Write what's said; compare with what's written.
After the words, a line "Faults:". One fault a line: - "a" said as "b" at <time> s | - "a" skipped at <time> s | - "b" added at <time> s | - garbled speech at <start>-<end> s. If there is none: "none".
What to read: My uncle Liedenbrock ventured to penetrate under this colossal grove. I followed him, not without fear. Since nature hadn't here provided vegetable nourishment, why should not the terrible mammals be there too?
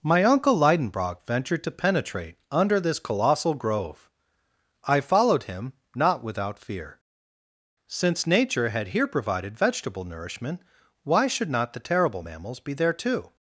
My uncle Liedenbrock ventured to penetrate under this colossal grove. I followed him, not without fear. Since nature had here provided vegetable nourishment, why should not the terrible mammals be there too?
Faults:
- "hadn't" said as "had" at 8.7 s